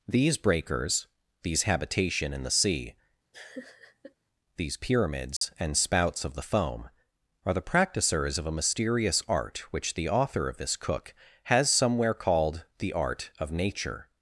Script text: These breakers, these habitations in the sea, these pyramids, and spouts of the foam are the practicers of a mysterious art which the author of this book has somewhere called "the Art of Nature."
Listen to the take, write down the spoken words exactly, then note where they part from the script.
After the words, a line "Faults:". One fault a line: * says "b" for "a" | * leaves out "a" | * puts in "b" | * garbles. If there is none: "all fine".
These breakers, these habitation in the sea, these pyramids, and spouts of the foam are the practicers of a mysterious art which the author of this cook has somewhere called "the Art of Nature."
Faults:
* says "habitation" for "habitations"
* says "cook" for "book"